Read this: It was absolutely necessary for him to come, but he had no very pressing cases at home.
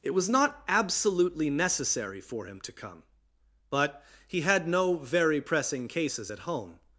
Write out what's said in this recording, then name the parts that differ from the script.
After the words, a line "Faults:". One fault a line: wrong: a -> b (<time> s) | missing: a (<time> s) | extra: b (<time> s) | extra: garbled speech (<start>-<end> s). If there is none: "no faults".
It was not absolutely necessary for him to come, but he had no very pressing cases at home.
Faults:
extra: not (0.3 s)